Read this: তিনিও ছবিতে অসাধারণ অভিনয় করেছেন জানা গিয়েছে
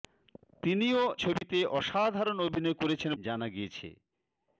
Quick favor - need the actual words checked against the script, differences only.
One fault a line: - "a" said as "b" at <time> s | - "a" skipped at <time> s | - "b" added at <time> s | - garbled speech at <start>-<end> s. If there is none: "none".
none